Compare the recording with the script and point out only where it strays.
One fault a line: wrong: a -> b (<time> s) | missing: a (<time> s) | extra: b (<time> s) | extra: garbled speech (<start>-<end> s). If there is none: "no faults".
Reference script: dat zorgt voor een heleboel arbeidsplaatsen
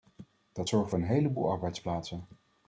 no faults